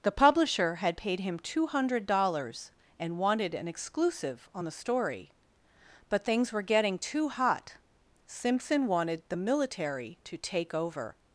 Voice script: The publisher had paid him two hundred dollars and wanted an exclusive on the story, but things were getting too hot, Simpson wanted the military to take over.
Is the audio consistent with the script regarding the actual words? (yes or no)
yes